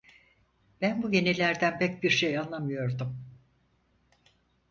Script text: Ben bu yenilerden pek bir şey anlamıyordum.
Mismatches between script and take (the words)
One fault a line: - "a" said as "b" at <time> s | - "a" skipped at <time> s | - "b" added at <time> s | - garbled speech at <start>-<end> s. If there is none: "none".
none